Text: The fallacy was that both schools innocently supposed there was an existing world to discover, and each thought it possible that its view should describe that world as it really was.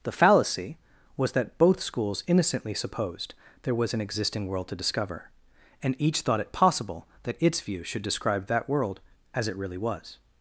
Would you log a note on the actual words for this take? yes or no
no